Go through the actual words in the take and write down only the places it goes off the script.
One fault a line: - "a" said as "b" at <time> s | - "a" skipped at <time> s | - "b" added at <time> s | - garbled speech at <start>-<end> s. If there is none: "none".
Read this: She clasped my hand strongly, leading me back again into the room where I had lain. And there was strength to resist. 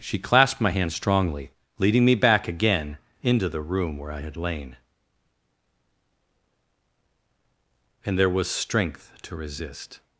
none